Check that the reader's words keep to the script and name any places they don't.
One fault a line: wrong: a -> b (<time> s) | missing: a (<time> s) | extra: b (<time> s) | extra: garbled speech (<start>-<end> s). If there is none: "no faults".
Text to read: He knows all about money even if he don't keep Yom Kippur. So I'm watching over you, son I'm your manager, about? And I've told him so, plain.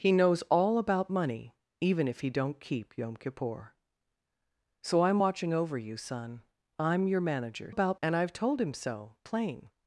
no faults